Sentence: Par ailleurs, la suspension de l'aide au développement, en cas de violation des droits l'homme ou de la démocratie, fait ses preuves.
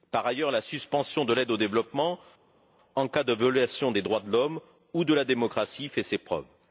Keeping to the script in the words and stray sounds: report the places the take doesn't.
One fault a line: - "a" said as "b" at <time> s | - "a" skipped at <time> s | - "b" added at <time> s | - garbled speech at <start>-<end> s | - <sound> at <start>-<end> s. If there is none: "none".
- "de" added at 4.2 s